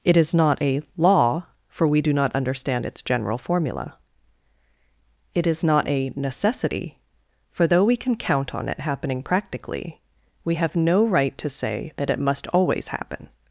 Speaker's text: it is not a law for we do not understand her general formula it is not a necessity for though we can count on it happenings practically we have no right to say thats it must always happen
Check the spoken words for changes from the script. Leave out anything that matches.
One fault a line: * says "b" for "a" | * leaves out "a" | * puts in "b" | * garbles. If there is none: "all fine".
* says "its" for "her"
* says "happening" for "happenings"
* says "that" for "thats"